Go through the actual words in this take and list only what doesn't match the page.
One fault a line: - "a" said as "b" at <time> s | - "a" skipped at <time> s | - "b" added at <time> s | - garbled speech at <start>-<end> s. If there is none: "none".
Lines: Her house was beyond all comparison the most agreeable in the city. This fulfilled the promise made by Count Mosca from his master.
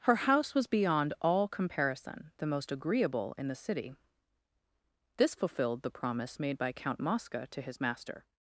- "from" said as "to" at 7.5 s